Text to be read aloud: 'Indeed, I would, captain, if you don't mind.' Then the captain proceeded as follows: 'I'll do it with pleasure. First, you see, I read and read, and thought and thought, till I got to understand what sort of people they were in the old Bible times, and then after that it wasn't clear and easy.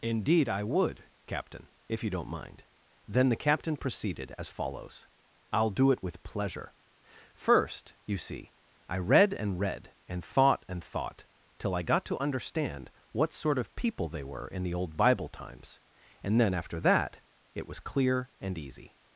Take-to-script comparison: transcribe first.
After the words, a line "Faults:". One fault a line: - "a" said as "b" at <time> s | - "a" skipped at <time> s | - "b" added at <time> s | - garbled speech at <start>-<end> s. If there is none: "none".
'Indeed, I would, captain, if you don't mind.' Then the captain proceeded as follows: 'I'll do it with pleasure. First, you see, I read and read, and thought and thought, till I got to understand what sort of people they were in the old Bible times, and then after that it was clear and easy.
Faults:
- "wasn't" said as "was" at 17.7 s